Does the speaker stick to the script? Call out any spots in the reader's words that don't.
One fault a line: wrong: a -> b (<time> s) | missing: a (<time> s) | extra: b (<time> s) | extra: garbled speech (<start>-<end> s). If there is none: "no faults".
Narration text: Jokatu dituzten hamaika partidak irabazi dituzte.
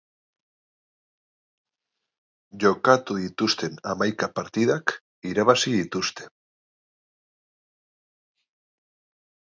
no faults